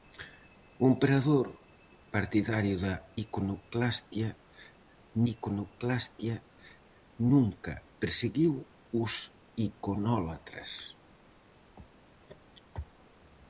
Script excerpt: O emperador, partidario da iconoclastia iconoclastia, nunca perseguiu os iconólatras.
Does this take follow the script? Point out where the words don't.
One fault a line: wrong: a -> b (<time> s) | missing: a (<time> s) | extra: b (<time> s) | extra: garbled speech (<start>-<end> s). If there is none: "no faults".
no faults